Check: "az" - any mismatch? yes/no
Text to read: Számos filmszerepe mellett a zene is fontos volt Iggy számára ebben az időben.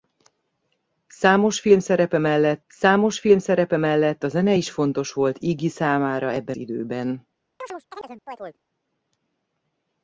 yes